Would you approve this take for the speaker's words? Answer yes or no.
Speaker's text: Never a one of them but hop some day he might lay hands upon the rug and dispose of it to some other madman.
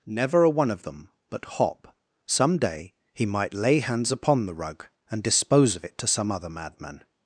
yes